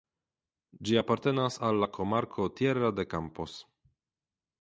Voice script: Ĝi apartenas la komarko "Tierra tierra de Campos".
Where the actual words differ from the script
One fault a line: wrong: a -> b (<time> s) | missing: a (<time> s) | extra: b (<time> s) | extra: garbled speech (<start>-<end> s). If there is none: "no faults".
extra: al (1.7 s)
missing: tierra (2.9 s)